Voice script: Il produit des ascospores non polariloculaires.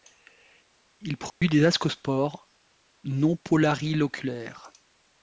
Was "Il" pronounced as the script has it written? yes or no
yes